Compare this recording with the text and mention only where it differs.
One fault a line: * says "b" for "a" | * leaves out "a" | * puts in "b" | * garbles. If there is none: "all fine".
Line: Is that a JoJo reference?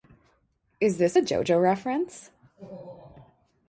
* says "this" for "that"